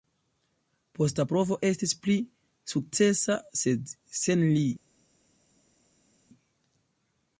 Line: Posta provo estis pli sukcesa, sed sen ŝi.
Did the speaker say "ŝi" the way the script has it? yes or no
no